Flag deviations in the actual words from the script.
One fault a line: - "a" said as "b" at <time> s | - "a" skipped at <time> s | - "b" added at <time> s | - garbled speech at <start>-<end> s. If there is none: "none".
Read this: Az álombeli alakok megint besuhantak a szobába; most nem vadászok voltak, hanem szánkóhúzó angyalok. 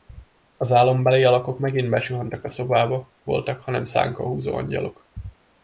- "most nem vadászok" skipped at 3.1 s